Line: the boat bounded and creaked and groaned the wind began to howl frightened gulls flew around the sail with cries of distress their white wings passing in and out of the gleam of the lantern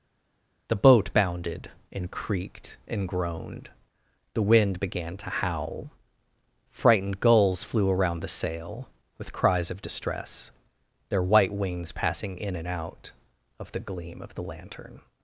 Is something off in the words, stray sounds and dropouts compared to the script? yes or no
no